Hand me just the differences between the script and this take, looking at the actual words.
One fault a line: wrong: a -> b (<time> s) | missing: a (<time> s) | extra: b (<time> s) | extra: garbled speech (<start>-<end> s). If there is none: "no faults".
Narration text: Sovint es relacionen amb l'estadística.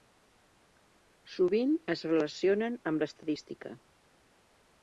no faults